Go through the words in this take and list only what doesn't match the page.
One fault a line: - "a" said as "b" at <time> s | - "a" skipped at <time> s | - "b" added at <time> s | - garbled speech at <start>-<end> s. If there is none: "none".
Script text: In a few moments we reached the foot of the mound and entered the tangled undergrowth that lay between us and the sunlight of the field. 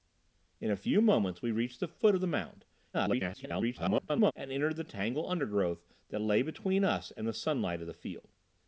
- garbled speech at 2.9-4.3 s